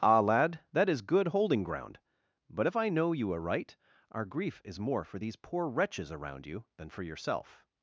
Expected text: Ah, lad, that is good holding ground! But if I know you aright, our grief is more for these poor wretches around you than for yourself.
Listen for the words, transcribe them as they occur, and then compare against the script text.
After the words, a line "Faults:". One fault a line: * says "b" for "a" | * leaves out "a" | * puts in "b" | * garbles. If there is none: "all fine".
Ah, lad, that is good holding ground! But if I know you aright, our grief is more for these poor wretches around you than for yourself.
Faults:
all fine